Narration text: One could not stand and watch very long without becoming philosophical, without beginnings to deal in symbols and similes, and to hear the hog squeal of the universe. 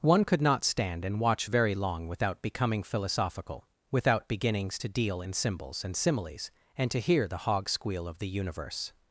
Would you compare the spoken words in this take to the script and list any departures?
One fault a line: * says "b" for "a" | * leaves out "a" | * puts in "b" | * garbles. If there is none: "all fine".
all fine